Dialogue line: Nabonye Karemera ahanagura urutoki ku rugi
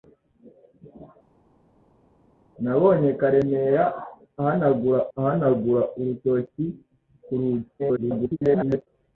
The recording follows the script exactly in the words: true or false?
false